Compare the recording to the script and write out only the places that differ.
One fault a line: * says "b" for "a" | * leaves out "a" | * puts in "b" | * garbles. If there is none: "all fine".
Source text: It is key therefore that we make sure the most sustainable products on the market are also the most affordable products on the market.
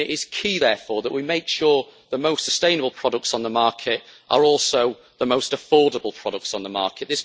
all fine